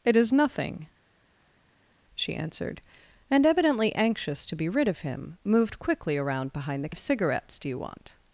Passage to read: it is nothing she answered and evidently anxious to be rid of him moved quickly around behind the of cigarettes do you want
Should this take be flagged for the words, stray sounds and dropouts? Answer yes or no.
no